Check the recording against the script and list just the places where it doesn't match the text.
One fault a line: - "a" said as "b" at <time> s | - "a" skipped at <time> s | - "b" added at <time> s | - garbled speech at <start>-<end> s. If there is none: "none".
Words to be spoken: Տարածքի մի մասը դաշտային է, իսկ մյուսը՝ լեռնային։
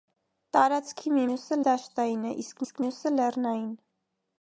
- "մասը" said as "մյուսը" at 1.3 s
- "իսկ" added at 2.6 s